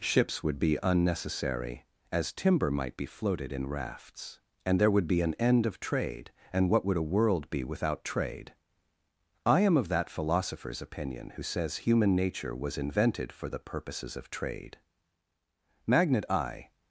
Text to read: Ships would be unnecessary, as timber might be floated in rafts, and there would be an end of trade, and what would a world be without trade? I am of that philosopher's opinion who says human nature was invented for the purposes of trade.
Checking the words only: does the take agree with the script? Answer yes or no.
no